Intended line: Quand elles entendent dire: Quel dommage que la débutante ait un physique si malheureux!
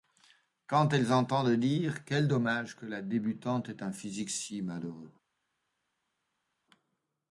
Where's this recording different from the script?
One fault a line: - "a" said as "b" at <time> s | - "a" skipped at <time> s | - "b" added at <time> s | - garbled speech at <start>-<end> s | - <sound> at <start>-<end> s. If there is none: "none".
none